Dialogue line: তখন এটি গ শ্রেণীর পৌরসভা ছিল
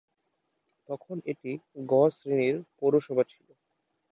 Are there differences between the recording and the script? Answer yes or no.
no